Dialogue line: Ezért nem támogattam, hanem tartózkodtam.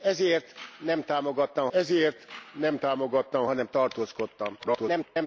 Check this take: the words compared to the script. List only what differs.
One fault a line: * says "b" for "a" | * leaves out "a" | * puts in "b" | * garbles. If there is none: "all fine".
* puts in "ezért nem támogattam"
* garbles